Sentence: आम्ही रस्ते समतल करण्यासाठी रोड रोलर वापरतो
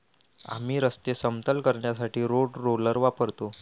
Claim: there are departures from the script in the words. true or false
false